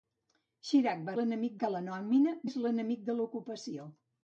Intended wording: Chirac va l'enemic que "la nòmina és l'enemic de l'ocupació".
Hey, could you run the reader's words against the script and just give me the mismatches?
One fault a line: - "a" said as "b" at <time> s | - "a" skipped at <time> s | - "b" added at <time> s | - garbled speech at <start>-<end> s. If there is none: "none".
none